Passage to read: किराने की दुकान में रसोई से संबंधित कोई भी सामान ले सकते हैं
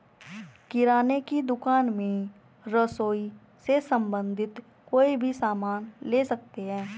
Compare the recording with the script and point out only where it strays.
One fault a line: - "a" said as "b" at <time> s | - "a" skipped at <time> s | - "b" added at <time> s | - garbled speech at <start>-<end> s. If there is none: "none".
none